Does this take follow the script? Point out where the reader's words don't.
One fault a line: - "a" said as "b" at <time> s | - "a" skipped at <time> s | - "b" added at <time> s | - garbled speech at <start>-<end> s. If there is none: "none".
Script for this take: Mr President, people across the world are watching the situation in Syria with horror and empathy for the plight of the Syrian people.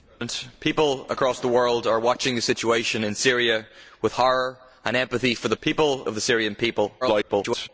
- "plight" said as "people" at 5.6 s
- garbled speech at 7.0-7.7 s